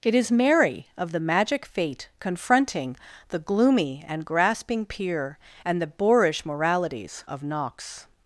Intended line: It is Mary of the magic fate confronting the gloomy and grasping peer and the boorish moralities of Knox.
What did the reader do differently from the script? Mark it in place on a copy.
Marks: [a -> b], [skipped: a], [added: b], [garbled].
It is Mary of the magic fate confronting the gloomy and grasping peer and the boorish moralities of Knox.